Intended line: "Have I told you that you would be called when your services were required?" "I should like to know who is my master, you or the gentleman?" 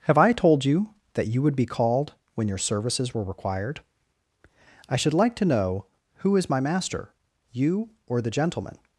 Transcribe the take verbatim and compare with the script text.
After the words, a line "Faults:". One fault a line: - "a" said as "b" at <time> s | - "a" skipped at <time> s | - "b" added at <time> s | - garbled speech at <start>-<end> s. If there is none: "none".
"Have I told you that you would be called when your services were required?" "I should like to know who is my master, you or the gentleman?"
Faults:
none